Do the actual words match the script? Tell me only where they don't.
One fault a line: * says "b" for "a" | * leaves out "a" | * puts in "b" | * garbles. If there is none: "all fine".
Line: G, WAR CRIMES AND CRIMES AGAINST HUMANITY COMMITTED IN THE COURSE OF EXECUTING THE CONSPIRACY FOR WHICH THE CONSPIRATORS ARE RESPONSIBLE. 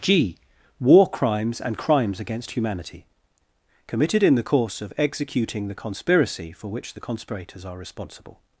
all fine